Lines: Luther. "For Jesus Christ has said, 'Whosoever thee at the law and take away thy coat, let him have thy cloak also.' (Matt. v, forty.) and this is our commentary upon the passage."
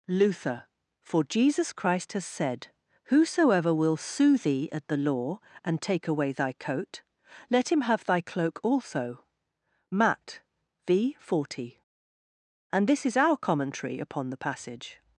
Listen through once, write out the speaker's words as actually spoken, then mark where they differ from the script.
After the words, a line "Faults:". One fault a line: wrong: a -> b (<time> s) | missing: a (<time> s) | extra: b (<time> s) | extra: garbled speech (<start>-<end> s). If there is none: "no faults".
Luther. "For Jesus Christ has said, 'Whosoever will sue thee at the law and take away thy coat, let him have thy cloak also.' (Matt. v, forty.) and this is our commentary upon the passage."
Faults:
extra: will sue (3.7 s)